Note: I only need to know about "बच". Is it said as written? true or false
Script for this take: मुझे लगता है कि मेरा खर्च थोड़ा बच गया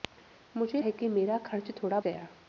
false